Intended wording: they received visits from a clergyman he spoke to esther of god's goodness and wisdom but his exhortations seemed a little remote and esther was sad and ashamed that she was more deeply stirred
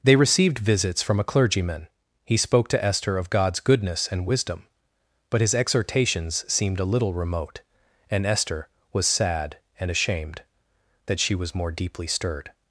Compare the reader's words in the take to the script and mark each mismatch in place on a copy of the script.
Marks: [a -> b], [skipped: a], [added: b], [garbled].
they received visits from a clergyman he spoke to esther of god's goodness and wisdom but his exhortations seemed a little remote and esther was sad and ashamed that she was more deeply stirred